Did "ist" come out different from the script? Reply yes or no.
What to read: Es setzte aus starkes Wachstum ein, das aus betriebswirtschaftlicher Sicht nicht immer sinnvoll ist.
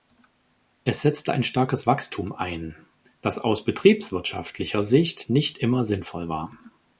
yes